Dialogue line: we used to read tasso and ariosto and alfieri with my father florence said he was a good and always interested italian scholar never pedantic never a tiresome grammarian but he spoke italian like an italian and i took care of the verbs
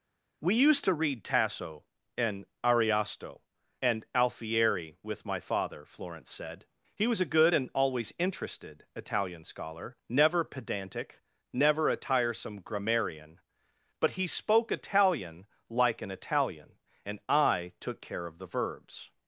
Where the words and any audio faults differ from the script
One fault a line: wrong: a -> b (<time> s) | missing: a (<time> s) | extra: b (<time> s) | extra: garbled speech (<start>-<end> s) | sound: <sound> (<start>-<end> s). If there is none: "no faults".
no faults